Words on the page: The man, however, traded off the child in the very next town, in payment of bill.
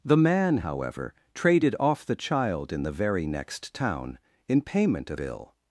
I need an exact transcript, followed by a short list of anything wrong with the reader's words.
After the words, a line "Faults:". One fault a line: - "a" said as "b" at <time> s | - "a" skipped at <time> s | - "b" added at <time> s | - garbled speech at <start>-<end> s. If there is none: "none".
The man, however, traded off the child in the very next town, in payment of bill.
Faults:
none